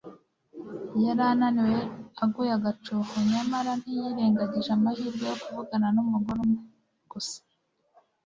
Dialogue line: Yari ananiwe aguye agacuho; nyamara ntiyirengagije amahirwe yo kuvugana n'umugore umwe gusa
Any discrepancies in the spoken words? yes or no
no